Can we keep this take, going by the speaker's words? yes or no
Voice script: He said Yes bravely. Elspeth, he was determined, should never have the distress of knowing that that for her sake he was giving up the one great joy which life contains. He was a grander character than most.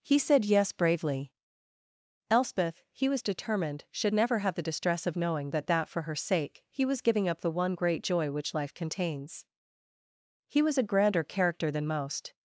yes